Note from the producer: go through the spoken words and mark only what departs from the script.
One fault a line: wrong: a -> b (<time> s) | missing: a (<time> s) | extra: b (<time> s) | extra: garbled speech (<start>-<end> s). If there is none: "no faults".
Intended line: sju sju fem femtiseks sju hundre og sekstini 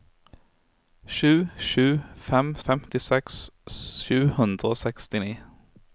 no faults